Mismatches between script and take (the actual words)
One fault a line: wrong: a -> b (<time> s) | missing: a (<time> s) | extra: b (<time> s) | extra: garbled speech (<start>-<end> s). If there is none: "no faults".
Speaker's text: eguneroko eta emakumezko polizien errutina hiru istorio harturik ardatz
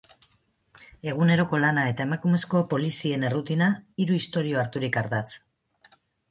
extra: lana (1.6 s)